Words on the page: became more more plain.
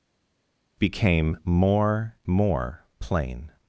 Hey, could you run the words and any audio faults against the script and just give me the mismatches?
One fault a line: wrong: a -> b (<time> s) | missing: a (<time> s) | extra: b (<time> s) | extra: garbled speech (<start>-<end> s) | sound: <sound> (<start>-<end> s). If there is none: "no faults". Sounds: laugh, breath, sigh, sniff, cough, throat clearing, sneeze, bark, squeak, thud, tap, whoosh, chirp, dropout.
no faults